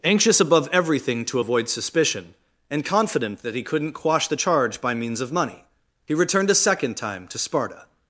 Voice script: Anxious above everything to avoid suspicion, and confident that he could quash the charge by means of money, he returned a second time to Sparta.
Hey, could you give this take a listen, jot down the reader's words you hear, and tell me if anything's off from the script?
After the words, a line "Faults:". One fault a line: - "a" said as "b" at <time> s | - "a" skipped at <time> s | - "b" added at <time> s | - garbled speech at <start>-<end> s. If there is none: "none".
Anxious above everything to avoid suspicion, and confident that he couldn't quash the charge by means of money, he returned a second time to Sparta.
Faults:
- "could" said as "couldn't" at 3.6 s